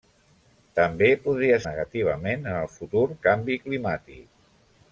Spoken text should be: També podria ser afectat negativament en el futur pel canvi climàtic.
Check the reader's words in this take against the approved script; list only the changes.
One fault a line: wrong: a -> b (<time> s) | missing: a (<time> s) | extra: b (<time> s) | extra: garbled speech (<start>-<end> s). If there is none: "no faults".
missing: ser afectat (1.6 s)
missing: pel (3.1 s)